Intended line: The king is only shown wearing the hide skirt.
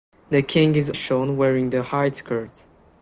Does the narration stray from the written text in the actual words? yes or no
yes